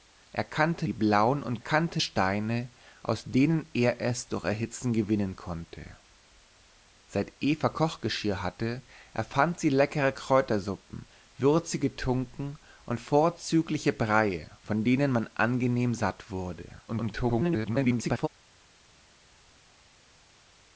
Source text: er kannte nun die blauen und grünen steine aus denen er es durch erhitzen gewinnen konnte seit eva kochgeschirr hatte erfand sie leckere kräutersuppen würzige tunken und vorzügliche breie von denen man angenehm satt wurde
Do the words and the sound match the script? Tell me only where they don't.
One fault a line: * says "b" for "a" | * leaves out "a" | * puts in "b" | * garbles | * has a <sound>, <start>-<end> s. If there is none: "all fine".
* leaves out "nun"
* says "kannte" for "grünen"
* garbles